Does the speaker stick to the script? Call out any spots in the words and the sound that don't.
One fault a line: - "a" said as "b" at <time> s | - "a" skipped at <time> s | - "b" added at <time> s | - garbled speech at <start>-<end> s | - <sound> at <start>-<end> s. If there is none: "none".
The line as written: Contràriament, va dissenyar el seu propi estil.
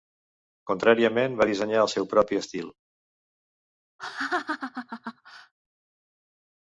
- laugh at 4.0-5.5 s